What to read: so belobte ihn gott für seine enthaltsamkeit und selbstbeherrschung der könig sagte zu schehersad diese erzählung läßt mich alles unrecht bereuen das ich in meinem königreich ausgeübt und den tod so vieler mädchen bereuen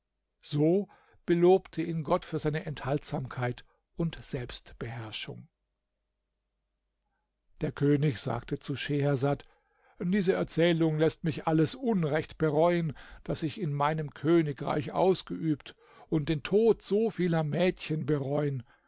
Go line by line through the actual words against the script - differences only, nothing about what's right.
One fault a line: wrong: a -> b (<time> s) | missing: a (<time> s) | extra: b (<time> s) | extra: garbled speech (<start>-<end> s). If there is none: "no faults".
no faults